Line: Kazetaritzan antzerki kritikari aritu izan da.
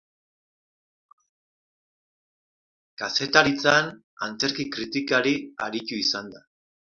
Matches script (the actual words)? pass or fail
pass